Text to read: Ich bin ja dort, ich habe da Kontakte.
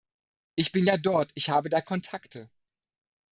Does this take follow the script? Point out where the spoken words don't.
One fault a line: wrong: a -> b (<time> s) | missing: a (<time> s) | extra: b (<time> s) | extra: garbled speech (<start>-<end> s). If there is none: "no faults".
no faults